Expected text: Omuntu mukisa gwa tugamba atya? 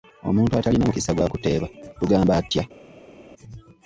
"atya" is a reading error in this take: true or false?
false